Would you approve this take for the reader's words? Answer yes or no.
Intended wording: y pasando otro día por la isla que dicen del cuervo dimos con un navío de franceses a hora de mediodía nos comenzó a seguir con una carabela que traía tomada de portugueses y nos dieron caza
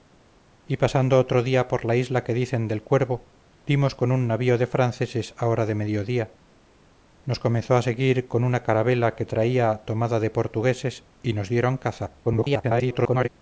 no